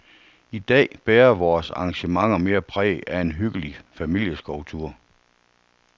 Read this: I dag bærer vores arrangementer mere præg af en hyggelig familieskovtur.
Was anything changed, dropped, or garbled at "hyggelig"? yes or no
no